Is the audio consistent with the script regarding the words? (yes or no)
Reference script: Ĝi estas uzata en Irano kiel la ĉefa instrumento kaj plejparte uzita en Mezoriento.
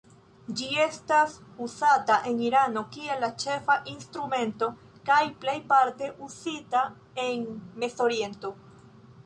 yes